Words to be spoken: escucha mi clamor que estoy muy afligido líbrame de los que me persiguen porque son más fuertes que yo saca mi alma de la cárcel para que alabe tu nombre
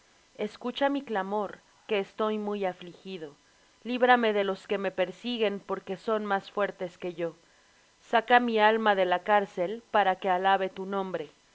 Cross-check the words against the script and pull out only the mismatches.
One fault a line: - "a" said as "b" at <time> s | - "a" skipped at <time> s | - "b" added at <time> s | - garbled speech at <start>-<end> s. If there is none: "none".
none